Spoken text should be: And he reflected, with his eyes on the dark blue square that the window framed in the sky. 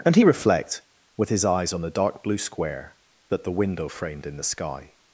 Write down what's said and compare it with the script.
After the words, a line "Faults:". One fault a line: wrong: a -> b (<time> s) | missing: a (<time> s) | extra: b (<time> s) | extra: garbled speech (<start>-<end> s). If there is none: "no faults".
And he reflect, with his eyes on the dark blue square that the window framed in the sky.
Faults:
wrong: reflected -> reflect (0.2 s)